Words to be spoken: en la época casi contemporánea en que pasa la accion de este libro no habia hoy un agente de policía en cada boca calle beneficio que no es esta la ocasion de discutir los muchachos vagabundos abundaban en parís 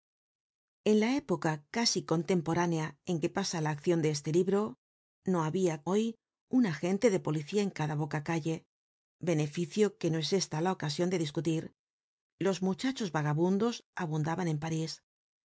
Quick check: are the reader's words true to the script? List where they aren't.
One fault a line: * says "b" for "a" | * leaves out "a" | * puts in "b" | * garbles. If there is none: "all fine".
all fine